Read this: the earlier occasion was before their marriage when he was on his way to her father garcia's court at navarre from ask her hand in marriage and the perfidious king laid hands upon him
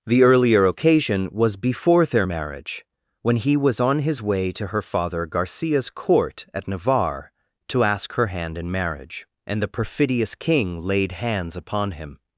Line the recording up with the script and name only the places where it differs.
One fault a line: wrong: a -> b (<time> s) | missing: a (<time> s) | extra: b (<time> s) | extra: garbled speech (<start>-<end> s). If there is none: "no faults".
wrong: from -> to (7.7 s)